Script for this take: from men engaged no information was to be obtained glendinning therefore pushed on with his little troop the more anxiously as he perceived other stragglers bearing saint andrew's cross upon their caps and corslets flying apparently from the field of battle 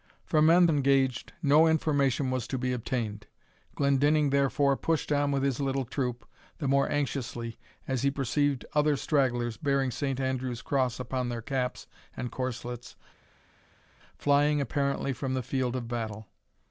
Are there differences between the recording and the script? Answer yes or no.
no